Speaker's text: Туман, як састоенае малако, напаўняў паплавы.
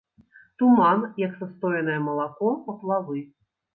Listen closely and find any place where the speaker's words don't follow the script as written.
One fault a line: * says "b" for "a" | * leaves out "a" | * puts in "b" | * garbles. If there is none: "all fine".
* leaves out "напаўняў"